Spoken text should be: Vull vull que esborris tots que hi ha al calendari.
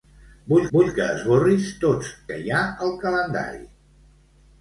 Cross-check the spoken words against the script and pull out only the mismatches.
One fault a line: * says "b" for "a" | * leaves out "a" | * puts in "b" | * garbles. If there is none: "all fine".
all fine